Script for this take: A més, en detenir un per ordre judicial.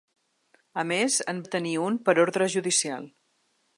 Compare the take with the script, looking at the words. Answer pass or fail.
pass